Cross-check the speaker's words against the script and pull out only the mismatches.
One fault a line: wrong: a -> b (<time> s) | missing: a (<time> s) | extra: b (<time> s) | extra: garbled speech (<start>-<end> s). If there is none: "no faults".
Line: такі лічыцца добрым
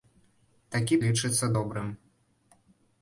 no faults